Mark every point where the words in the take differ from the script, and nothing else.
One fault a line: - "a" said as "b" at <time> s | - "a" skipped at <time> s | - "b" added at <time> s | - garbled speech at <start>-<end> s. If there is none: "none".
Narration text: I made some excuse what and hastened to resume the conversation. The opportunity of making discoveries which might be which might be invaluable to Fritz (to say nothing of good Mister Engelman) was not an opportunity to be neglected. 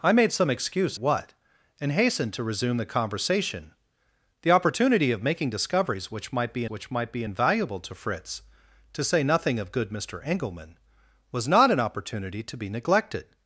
none